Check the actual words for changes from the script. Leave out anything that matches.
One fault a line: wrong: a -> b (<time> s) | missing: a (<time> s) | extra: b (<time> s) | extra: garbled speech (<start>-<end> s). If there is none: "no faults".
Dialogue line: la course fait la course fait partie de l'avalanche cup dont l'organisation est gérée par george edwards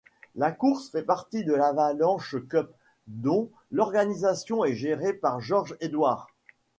missing: la course fait (1.0 s)